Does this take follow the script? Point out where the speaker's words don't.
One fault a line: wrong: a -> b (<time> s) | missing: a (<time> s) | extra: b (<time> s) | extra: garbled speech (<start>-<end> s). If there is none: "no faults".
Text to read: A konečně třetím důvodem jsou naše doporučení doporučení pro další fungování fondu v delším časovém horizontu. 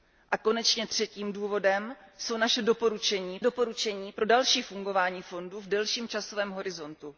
no faults